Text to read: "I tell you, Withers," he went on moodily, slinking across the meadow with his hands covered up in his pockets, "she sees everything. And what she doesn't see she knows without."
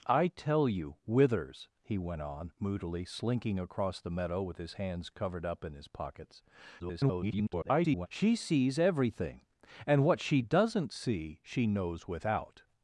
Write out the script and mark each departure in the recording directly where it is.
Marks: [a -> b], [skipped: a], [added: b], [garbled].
"I tell you, Withers," he went on moodily, slinking across the meadow with his hands covered up in his pockets, [garbled] "she sees everything. And what she doesn't see she knows without."